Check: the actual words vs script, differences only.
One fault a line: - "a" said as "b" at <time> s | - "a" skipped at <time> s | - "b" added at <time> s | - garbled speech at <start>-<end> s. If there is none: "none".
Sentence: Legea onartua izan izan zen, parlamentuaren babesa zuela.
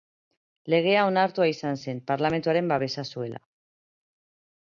- "izan" skipped at 1.8 s